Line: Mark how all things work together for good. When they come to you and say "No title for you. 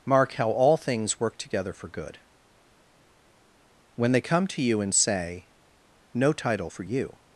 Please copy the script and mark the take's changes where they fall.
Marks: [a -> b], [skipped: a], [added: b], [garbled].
Mark how all things work together for good. When they come to you and say "No title for you.